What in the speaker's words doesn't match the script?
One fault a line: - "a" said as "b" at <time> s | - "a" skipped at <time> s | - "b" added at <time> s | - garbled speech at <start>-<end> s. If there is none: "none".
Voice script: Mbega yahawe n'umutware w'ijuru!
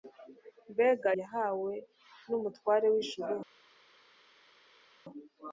none